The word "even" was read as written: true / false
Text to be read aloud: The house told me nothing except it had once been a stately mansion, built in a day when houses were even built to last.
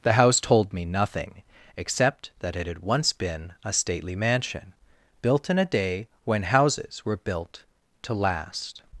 false